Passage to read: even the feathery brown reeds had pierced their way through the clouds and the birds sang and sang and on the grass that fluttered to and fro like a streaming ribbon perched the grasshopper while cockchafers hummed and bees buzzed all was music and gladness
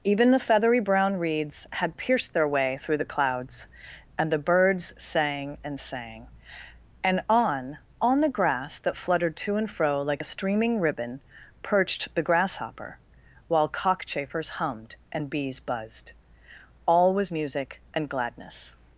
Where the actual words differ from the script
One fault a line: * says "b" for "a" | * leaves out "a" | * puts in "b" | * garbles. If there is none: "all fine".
* puts in "on"